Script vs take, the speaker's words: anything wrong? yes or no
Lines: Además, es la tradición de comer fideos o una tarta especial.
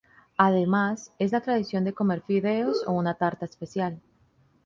no